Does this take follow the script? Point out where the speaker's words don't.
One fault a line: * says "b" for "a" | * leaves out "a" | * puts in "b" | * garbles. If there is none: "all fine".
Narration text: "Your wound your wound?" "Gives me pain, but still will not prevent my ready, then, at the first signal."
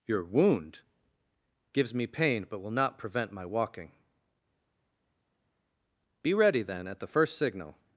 * leaves out "your wound"
* leaves out "still"
* puts in "walking Be"